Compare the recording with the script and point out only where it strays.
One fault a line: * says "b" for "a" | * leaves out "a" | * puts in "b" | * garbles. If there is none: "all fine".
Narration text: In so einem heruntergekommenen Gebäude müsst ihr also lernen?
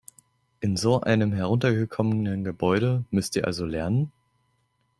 all fine